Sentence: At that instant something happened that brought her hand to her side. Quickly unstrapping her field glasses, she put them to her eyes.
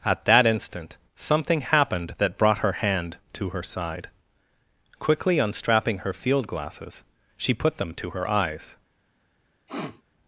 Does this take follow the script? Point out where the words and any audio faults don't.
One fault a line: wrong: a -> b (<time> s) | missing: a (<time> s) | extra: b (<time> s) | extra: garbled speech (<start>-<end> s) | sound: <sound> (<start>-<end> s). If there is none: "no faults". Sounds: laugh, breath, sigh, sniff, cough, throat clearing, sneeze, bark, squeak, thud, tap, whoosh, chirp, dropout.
sound: sniff (9.7-10.0 s)